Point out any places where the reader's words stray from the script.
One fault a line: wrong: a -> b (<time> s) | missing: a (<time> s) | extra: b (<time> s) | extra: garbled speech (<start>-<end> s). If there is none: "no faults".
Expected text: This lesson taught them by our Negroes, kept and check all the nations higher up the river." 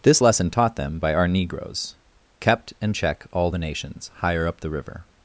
no faults